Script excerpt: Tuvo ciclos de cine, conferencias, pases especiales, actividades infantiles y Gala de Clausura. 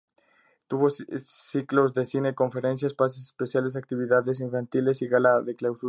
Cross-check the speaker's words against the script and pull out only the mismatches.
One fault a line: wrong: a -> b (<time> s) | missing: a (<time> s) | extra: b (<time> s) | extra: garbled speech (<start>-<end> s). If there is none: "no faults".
no faults